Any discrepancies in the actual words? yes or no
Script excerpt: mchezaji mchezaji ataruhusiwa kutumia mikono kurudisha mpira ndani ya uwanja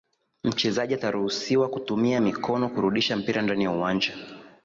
yes